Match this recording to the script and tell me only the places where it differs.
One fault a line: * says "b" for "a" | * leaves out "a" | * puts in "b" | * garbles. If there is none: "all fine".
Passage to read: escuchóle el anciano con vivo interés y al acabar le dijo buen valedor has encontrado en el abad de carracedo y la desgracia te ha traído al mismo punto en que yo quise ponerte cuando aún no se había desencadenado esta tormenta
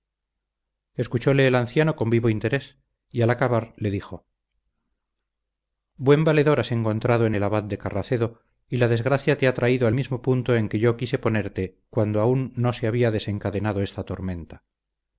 all fine